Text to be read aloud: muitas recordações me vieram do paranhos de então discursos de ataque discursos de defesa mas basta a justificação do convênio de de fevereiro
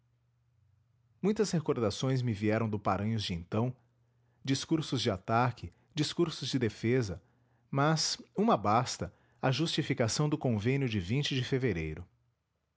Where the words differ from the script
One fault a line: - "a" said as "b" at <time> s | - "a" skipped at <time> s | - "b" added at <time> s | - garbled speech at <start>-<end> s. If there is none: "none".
- "uma" added at 8.4 s